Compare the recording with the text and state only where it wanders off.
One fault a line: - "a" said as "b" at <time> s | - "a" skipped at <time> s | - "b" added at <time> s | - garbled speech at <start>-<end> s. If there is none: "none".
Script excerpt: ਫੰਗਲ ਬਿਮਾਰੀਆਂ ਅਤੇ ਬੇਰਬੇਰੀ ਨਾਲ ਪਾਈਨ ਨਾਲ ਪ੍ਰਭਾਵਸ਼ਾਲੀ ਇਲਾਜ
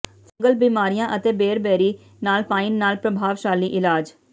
none